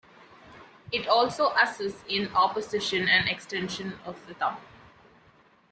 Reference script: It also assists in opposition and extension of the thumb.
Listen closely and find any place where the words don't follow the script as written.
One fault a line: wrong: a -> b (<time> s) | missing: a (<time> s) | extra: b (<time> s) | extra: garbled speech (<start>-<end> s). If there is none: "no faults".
no faults